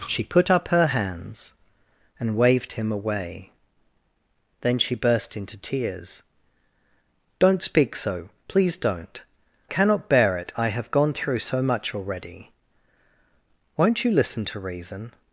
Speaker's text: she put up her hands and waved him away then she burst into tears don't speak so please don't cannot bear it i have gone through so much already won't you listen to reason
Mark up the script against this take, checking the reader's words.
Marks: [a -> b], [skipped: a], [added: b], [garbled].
she put up her hands and waved him away then she burst into tears don't speak so please don't cannot bear it i have gone through so much already won't you listen to reason